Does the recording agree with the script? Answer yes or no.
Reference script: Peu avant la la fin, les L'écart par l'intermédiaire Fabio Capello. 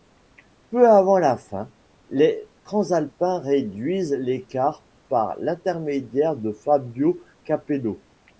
no